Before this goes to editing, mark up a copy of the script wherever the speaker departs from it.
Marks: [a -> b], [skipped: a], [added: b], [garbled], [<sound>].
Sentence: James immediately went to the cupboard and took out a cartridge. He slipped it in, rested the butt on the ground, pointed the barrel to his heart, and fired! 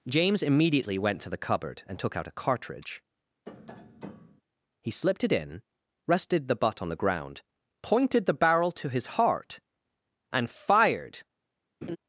James immediately went to the cupboard and took out a cartridge. [tap] He slipped it in, rested the butt on the ground, pointed the barrel to his heart, and fired! [laugh]